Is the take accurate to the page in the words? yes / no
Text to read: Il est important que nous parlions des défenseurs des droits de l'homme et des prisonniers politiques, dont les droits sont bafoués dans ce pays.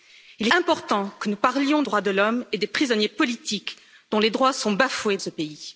no